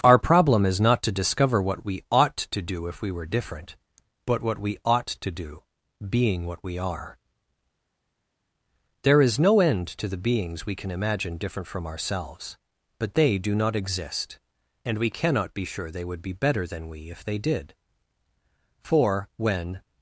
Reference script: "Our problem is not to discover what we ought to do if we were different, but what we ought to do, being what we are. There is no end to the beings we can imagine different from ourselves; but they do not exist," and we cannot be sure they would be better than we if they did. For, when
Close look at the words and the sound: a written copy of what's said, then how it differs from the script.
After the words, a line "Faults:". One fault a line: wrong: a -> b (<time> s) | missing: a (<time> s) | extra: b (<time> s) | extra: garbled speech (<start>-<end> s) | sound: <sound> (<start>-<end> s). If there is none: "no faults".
"Our problem is not to discover what we ought to do if we were different, but what we ought to do, being what we are. There is no end to the beings we can imagine different from ourselves; but they do not exist," and we cannot be sure they would be better than we if they did. For, when
Faults:
no faults